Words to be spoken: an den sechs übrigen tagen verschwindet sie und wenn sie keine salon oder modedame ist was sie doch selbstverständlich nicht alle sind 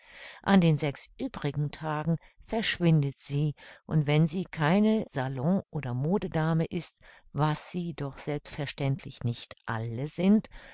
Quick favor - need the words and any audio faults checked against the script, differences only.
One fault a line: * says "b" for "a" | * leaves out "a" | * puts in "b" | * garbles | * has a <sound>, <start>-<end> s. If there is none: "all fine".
all fine